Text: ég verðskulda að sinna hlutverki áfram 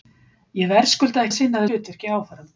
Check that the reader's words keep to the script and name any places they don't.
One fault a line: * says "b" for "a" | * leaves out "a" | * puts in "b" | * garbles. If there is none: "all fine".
all fine